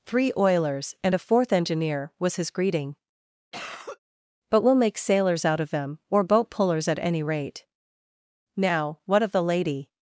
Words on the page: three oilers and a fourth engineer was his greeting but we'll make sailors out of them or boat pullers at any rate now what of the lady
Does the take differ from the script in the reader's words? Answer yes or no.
no